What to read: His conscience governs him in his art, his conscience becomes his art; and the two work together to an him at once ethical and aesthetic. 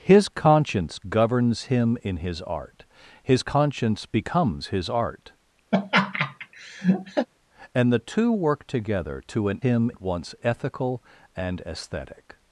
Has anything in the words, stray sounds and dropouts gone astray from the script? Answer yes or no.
yes